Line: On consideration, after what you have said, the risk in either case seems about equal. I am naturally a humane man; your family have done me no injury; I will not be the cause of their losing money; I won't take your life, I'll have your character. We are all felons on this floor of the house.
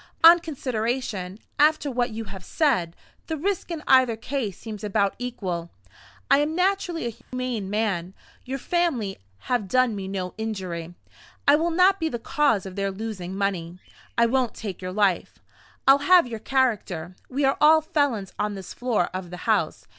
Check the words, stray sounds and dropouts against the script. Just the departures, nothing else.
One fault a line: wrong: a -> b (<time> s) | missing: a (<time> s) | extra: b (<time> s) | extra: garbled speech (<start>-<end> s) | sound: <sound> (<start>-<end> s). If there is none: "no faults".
sound: dropout (7.2-7.3 s)